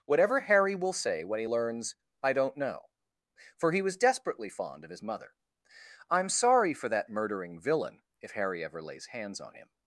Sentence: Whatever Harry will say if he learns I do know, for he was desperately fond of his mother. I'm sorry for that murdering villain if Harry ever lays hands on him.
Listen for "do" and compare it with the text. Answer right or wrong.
wrong